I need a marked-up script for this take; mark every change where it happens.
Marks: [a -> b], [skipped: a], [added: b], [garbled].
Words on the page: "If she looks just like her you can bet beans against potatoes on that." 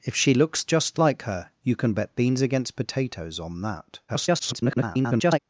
"If she looks just like her you can bet beans against potatoes on that." [garbled]